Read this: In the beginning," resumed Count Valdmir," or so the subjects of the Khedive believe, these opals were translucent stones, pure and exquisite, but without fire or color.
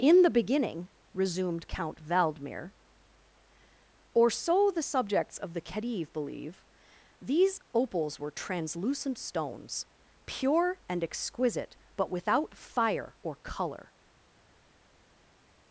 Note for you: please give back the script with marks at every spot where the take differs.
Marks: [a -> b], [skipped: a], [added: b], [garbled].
In the beginning," resumed Count Valdmir," or so the subjects of the Khedive believe, these opals were translucent stones, pure and exquisite, but without fire or color.